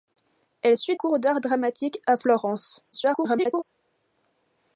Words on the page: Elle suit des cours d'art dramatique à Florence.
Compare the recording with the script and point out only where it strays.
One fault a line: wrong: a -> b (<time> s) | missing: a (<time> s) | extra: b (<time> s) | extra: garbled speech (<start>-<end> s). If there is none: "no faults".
missing: des (1.0 s)
extra: garbled speech (2.9-3.6 s)